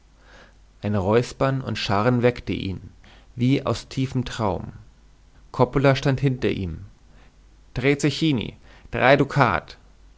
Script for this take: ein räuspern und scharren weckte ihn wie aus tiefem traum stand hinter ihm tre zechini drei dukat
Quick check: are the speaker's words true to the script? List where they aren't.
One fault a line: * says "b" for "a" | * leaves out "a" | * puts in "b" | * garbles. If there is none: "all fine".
* puts in "coppola"